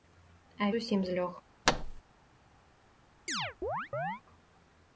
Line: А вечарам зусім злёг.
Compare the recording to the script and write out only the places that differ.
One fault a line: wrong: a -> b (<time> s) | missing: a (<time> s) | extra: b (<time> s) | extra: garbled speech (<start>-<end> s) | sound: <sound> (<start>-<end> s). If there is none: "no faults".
missing: вечарам (0.7 s)
sound: thud (1.7-2.0 s)
sound: chirp (3.3-4.2 s)